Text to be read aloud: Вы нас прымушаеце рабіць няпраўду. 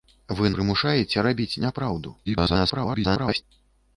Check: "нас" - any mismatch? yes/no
yes